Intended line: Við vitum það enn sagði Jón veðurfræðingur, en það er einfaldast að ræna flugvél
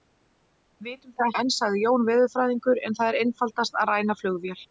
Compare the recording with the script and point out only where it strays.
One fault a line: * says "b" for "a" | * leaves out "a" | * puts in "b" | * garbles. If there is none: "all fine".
all fine